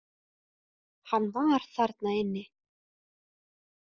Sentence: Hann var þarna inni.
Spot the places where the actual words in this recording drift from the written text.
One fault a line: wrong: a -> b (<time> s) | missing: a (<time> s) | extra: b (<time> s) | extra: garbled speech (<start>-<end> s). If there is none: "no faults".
no faults